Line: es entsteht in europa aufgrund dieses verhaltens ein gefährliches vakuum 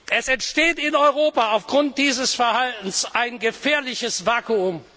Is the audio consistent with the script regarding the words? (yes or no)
yes